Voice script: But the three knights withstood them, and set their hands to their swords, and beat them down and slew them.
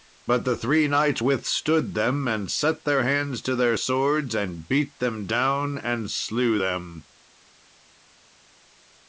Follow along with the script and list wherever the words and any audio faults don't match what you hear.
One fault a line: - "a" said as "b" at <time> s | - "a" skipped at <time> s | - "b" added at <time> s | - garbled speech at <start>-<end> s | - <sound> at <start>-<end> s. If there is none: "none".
none